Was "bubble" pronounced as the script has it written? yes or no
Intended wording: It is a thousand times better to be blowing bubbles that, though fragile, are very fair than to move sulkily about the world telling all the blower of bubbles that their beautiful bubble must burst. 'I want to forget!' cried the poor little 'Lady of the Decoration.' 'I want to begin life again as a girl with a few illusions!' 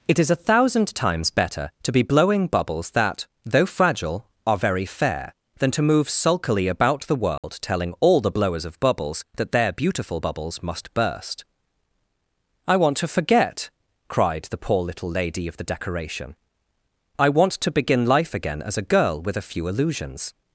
no